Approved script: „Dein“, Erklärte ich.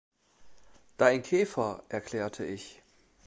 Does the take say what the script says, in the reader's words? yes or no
no